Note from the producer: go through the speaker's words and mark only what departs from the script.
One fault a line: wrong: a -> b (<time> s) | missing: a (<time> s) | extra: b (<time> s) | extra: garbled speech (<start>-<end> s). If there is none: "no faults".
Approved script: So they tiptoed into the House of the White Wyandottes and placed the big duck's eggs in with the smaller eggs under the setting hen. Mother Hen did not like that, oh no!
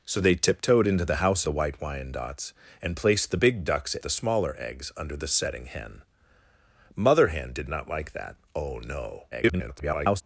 missing: of (1.4 s)
missing: eggs in with (4.0 s)
extra: garbled speech (9.3-10.2 s)